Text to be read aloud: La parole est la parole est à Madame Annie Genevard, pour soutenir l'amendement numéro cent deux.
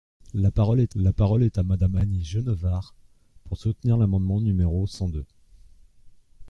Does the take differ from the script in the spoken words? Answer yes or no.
no